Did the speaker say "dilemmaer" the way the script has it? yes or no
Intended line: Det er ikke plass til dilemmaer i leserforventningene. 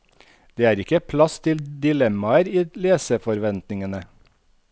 yes